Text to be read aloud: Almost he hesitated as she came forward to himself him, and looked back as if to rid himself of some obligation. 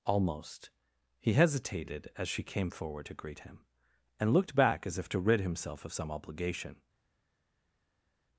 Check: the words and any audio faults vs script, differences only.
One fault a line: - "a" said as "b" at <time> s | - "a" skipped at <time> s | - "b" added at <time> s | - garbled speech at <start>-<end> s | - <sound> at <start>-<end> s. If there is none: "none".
- "himself" said as "greet" at 3.1 s